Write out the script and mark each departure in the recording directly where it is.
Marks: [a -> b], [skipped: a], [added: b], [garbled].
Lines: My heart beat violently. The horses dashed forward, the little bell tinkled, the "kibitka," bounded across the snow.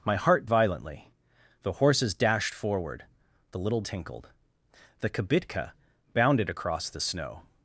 My heart [skipped: beat] violently. The horses dashed forward, the little [skipped: bell] tinkled, the "kibitka," bounded across the snow.